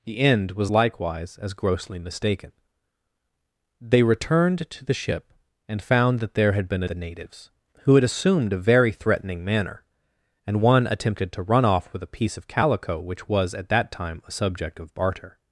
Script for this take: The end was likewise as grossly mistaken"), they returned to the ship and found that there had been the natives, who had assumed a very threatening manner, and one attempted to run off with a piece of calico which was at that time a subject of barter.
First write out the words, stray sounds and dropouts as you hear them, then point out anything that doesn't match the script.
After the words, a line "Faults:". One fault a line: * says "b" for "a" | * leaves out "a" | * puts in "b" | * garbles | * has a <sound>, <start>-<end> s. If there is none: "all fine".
The end was likewise as grossly mistaken"), they returned to the ship and found that there had been the natives, who had assumed a very threatening manner, and one attempted to run off with a piece of calico which was at that time a subject of barter.
Faults:
all fine